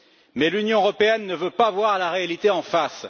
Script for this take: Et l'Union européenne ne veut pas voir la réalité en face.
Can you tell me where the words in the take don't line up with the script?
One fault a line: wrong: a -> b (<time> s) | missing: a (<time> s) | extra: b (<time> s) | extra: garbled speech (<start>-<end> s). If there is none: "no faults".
wrong: Et -> Mais (0.3 s)